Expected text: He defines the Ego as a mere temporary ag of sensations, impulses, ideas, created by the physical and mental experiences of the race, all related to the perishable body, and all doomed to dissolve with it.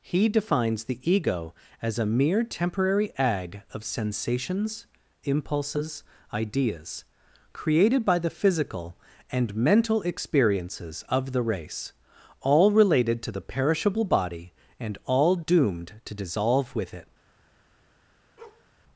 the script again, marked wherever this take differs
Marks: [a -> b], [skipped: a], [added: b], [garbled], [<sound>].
He defines the Ego as a mere temporary ag of sensations, impulses, ideas, created by the physical and mental experiences of the race, all related to the perishable body, and all doomed to dissolve with it. [bark]